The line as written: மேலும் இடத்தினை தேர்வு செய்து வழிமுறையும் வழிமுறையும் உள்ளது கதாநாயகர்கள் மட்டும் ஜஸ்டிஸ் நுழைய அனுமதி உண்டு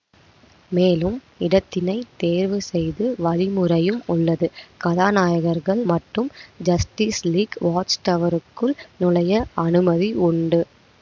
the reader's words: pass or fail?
fail